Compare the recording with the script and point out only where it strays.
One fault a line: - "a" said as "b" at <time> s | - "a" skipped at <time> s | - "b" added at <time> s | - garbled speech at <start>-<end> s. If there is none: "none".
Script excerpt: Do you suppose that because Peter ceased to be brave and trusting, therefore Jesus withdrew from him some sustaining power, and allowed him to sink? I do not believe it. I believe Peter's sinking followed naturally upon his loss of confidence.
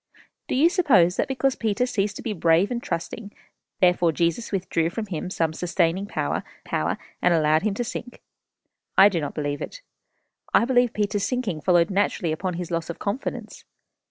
- "power" added at 6.6 s